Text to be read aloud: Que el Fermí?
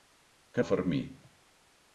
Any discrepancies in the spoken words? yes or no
no